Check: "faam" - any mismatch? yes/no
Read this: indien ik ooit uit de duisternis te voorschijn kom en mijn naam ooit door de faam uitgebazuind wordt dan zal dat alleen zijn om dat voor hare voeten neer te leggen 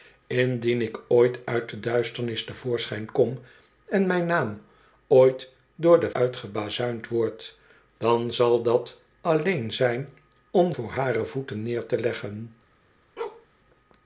yes